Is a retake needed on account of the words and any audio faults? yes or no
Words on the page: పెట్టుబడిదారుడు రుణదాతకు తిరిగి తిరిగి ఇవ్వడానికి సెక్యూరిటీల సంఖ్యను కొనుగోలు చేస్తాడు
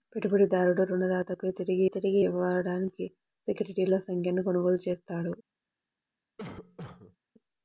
yes